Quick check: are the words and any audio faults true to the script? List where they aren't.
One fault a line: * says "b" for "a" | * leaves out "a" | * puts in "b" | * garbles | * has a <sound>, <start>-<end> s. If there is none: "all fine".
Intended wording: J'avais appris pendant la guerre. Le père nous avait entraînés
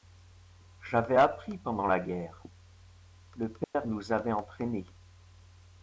* has a dropout, 3.6-3.7 s